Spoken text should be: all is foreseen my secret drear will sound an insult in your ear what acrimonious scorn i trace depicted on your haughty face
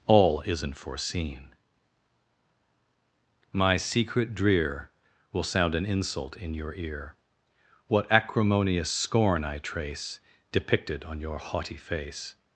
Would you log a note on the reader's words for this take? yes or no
yes